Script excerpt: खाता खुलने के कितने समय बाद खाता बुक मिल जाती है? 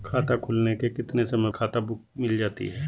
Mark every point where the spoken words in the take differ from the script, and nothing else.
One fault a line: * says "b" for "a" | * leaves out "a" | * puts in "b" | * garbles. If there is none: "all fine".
* leaves out "बाद"